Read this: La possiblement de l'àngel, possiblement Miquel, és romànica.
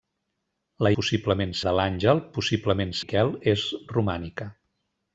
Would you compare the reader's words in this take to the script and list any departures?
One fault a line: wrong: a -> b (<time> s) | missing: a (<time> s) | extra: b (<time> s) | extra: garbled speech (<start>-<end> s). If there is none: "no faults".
no faults